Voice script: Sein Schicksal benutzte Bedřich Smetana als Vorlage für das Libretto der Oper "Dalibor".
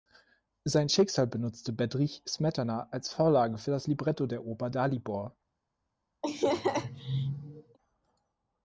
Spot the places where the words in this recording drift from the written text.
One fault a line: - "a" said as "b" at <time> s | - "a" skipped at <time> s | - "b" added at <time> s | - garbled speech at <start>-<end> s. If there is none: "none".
none